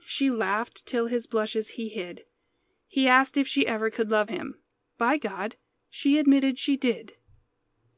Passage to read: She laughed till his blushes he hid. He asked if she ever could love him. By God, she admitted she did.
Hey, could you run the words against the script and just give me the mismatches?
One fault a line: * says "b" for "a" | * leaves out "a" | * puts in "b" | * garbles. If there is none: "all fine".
all fine